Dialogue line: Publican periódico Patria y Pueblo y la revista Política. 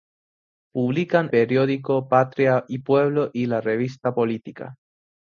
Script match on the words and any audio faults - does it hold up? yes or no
yes